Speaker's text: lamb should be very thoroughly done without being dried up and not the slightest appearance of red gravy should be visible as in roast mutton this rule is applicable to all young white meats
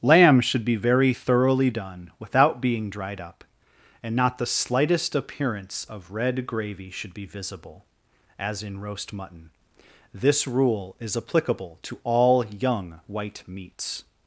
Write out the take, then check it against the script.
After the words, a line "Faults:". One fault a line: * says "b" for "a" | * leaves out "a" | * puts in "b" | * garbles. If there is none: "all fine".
lamb should be very thoroughly done without being dried up and not the slightest appearance of red gravy should be visible as in roast mutton this rule is applicable to all young white meats
Faults:
all fine